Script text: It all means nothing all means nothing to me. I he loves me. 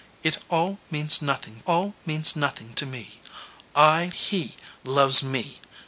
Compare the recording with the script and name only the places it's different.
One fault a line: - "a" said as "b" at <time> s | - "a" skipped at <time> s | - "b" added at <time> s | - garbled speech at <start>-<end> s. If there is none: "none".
none